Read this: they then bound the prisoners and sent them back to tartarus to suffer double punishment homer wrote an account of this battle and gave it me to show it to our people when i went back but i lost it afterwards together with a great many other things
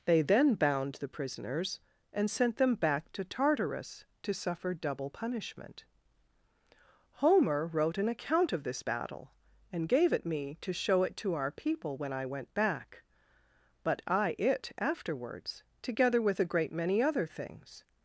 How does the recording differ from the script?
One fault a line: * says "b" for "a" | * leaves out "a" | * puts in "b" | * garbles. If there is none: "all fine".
* leaves out "lost"